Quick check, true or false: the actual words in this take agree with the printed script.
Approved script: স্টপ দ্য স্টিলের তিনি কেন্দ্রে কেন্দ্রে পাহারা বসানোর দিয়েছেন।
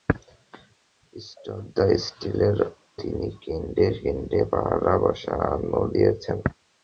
true